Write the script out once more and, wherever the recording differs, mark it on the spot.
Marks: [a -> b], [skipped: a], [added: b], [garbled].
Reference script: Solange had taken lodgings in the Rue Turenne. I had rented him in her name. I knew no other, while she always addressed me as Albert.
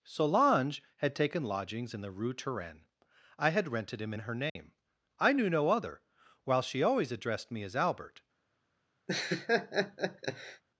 Solange had taken lodgings in the Rue Turenne. I had rented him in her name. I knew no other, while she always addressed me as Albert.